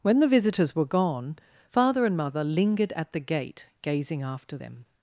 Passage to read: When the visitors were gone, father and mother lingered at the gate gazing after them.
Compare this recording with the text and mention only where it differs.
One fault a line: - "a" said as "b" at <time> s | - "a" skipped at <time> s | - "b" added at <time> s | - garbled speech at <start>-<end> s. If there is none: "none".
none